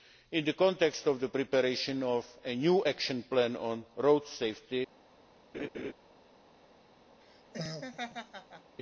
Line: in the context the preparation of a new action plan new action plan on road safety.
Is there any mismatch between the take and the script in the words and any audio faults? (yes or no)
yes